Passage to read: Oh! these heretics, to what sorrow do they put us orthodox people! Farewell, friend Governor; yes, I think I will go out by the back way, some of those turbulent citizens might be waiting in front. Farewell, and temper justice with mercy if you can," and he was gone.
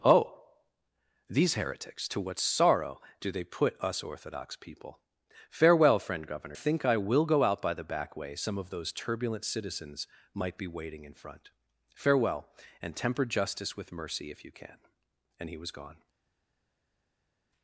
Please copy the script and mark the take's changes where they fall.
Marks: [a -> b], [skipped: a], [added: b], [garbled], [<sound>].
Oh! these heretics, to what sorrow do they put us orthodox people! Farewell, friend Governor; [skipped: yes, I] think I will go out by the back way, some of those turbulent citizens might be waiting in front. Farewell, and temper justice with mercy if you can," and he was gone.